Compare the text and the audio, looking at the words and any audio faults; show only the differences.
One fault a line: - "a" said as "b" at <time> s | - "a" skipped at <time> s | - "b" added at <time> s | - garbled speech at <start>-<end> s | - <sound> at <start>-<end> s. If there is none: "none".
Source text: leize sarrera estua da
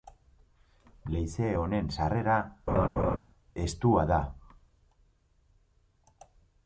- "honen" added at 1.6 s
- laugh at 2.7-3.2 s